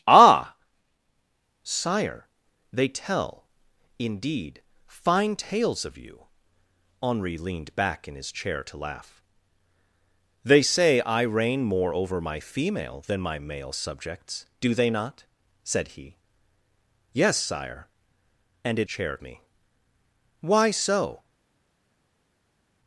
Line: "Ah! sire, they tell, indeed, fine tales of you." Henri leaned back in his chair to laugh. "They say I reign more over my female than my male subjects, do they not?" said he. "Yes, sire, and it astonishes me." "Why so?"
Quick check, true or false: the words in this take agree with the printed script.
false